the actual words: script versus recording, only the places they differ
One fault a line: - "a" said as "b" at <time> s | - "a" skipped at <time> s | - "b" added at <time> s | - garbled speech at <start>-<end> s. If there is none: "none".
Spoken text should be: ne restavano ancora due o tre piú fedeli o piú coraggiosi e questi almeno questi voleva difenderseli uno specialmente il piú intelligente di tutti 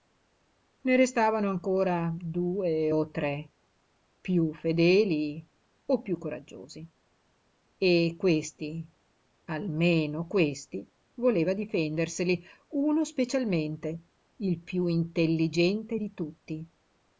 none